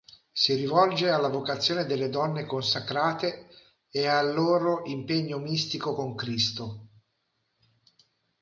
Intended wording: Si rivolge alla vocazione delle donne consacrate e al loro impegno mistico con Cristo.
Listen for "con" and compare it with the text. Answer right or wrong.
right